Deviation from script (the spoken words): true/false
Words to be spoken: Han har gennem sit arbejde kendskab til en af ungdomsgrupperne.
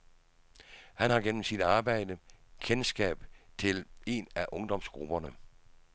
false